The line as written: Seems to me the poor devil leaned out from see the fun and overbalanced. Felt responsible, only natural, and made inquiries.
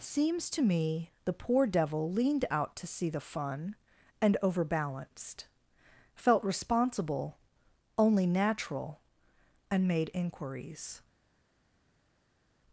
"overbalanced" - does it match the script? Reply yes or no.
yes